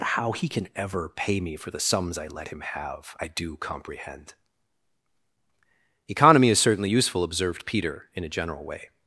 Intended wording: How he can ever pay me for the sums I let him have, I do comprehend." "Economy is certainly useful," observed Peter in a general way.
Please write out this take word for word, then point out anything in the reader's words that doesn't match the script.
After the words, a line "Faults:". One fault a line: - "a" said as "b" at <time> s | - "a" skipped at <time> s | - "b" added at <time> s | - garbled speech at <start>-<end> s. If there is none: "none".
How he can ever pay me for the sums I let him have, I do comprehend." "Economy is certainly useful," observed Peter in a general way.
Faults:
none